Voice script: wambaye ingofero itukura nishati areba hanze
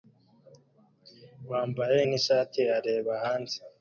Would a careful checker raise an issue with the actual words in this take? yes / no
yes